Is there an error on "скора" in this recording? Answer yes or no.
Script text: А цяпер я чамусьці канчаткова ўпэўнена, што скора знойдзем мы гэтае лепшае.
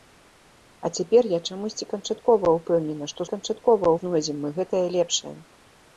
yes